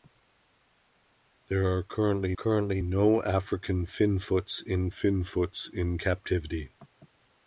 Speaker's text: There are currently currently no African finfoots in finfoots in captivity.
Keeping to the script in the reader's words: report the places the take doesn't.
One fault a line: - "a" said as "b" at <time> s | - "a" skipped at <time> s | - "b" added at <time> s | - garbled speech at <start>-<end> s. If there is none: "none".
none